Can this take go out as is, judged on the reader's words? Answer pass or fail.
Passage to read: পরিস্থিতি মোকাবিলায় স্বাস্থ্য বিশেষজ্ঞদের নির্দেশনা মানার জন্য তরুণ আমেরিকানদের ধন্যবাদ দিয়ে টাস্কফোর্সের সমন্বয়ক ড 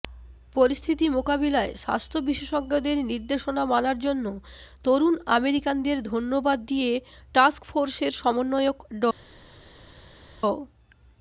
pass